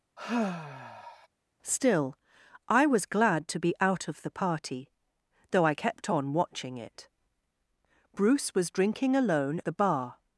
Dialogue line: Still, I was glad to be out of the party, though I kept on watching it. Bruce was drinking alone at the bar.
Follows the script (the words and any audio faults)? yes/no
no